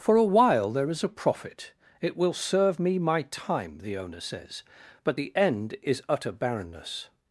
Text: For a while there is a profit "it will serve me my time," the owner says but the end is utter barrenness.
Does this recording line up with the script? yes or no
yes